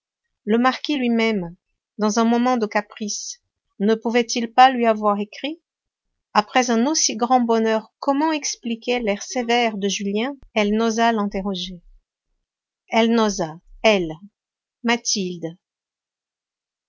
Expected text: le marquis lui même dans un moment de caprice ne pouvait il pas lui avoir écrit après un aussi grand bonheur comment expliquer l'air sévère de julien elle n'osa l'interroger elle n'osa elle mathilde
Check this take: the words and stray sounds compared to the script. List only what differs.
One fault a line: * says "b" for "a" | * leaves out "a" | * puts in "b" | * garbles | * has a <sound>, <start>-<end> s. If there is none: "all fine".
all fine